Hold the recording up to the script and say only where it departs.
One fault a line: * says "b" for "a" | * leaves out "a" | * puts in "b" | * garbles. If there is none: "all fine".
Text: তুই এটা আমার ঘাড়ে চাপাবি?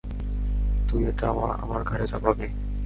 all fine